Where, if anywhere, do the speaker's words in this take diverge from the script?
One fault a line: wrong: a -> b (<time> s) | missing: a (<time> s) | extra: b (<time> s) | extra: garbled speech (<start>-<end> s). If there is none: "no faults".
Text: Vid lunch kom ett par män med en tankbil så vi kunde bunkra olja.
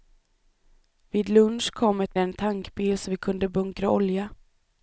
missing: par män med (2.1 s)